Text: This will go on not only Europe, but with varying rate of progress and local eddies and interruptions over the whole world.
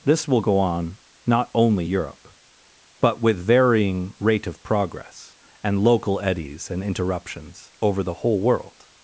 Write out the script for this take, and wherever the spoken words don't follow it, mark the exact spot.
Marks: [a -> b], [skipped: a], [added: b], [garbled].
This will go on not only Europe, but with varying rate of progress and local eddies and interruptions over the whole world.